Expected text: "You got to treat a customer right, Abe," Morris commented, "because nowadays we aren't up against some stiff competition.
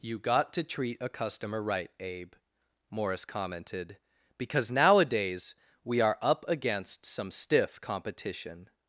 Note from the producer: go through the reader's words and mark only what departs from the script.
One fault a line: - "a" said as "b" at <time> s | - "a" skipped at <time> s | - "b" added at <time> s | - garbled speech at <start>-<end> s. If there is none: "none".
- "aren't" said as "are" at 6.0 s